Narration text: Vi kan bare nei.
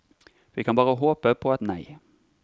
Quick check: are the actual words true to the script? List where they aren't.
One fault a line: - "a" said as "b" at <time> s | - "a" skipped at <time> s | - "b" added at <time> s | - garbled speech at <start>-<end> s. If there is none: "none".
- "håpe på et" added at 1.0 s